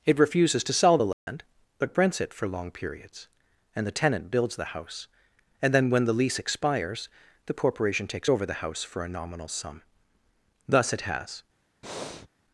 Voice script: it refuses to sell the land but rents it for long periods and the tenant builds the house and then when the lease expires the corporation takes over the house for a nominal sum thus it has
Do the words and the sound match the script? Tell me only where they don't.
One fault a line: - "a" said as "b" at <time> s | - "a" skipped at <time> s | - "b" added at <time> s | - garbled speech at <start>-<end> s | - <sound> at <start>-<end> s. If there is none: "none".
- dropout at 1.1-1.3 s
- breath at 11.8-12.3 s